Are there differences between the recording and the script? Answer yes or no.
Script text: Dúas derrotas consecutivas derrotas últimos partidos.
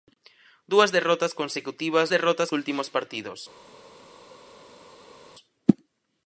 no